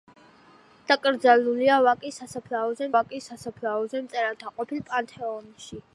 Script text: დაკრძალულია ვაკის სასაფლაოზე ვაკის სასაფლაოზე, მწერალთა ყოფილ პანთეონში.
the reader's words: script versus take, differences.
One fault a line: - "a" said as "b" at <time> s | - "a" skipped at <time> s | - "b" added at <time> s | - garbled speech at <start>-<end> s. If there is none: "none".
none